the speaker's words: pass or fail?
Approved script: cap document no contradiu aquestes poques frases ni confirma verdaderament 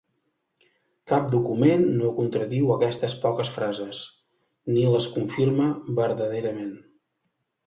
fail